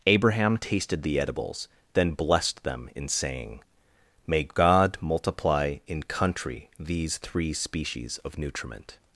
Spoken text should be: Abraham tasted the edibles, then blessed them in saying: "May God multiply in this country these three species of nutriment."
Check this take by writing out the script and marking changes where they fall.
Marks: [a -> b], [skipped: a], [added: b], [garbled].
Abraham tasted the edibles, then blessed them in saying: "May God multiply in [skipped: this] country these three species of nutriment."